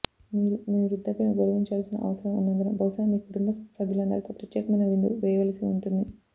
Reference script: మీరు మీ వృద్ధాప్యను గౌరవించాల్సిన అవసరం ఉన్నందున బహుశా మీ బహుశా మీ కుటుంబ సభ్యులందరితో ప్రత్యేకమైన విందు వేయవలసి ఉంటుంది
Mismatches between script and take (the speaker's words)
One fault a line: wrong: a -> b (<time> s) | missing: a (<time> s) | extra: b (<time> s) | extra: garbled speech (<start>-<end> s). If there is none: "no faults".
missing: బహుశా మీ (3.2 s)